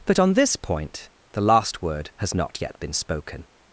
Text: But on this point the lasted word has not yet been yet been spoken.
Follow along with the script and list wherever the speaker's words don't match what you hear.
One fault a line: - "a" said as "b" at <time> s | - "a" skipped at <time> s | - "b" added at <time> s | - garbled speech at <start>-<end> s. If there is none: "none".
- "lasted" said as "last" at 1.4 s
- "yet been" skipped at 2.9 s